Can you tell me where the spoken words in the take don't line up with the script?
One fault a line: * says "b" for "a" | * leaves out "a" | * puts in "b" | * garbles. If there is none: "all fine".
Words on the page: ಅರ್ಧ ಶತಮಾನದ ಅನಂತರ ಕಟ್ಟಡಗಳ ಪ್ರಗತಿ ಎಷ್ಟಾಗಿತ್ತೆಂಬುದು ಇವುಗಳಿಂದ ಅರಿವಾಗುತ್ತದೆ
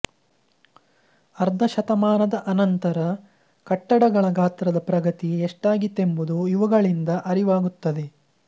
* puts in "ಗಾತ್ರದ"